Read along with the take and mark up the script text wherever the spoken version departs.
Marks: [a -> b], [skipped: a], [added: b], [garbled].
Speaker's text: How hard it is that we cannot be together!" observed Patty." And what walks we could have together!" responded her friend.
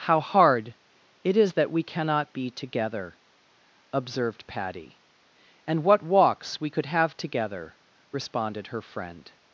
How hard it is that we cannot be together!" observed Patty." And what walks we could have together!" responded her friend.